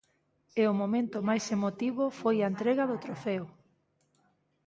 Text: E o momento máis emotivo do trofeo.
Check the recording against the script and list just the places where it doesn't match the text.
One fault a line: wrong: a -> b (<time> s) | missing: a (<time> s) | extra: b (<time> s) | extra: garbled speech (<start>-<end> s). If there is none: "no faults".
extra: foi a entrega (2.2 s)